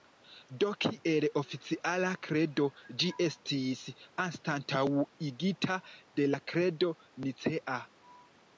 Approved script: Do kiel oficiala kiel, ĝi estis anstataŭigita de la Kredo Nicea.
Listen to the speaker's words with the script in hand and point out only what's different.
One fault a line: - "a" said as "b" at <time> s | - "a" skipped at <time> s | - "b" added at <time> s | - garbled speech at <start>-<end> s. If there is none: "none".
- "kiel" said as "kredo" at 2.3 s